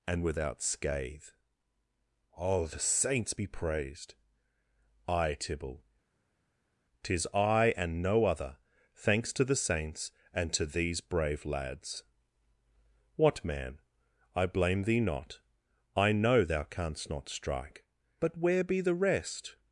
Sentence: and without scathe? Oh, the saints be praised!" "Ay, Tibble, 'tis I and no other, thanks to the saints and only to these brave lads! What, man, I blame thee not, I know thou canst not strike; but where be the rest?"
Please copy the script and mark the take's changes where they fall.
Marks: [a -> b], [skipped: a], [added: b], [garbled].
and without scathe? Oh, the saints be praised!" "Ay, Tibble, 'tis I and no other, thanks to the saints and [skipped: only] to these brave lads! What, man, I blame thee not, I know thou canst not strike; but where be the rest?"